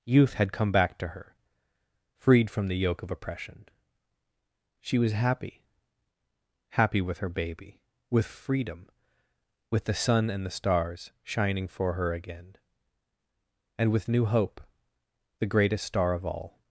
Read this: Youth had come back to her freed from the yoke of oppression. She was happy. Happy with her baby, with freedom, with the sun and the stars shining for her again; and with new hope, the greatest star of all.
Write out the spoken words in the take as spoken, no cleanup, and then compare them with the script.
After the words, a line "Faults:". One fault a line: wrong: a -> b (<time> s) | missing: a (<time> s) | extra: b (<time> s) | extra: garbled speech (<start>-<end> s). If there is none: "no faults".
Youth had come back to her freed from the yoke of oppression. She was happy. Happy with her baby, with freedom, with the sun and the stars shining for her again; and with new hope, the greatest star of all.
Faults:
no faults